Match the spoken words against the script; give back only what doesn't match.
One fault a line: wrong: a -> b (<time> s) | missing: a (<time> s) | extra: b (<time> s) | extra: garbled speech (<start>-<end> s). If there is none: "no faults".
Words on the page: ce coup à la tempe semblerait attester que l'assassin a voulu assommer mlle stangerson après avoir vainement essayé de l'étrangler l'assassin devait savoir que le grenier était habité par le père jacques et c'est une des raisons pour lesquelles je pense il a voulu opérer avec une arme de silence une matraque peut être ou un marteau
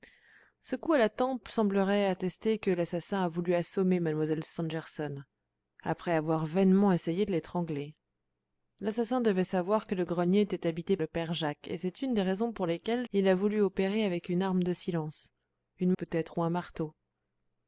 missing: par (11.0 s)
missing: je pense (13.1 s)
missing: matraque (15.9 s)